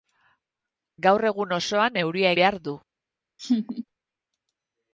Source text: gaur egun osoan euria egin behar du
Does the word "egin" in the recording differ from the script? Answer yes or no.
yes